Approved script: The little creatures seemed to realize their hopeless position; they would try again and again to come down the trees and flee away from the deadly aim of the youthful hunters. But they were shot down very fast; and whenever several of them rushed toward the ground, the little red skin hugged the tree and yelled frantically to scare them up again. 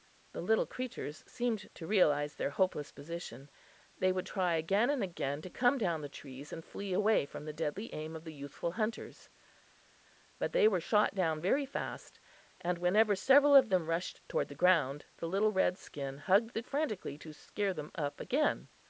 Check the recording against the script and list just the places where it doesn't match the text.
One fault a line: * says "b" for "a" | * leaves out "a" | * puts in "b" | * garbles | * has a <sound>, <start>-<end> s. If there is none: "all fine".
* leaves out "tree and yelled"